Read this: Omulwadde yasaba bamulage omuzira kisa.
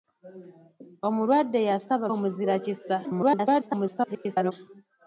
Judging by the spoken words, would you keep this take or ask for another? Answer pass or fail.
fail